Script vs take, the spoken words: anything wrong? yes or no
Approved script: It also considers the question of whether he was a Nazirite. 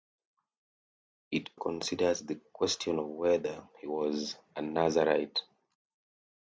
yes